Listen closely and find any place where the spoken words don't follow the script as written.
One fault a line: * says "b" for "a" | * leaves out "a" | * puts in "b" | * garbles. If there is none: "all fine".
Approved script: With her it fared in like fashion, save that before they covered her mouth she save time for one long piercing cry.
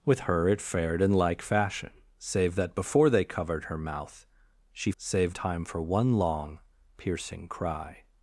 all fine